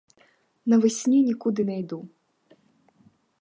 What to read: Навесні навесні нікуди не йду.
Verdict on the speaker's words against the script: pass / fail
fail